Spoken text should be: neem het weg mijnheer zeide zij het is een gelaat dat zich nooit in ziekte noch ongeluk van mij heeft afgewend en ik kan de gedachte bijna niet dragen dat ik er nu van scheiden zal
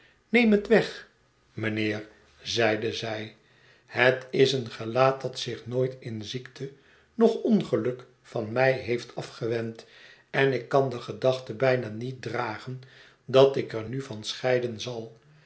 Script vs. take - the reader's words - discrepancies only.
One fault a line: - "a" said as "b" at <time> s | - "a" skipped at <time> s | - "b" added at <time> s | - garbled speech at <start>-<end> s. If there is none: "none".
none